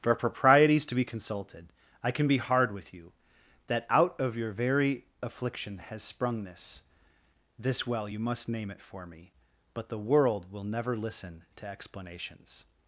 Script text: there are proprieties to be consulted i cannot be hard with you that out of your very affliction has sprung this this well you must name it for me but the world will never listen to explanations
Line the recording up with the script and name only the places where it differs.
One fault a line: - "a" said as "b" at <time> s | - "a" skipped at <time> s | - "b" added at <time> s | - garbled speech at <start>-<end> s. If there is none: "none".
- "cannot" said as "can" at 2.1 s